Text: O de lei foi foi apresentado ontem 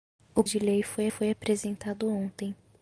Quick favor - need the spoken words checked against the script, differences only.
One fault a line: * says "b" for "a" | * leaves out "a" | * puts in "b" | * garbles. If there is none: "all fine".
all fine